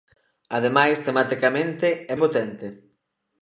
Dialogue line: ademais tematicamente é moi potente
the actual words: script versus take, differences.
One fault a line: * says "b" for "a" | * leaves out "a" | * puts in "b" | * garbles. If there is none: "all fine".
* leaves out "moi"